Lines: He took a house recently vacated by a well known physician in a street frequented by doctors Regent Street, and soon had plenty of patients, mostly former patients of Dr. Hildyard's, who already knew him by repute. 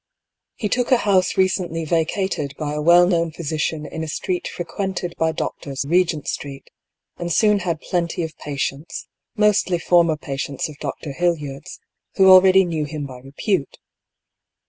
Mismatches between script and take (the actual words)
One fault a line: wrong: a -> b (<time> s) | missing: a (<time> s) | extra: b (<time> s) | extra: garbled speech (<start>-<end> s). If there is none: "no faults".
no faults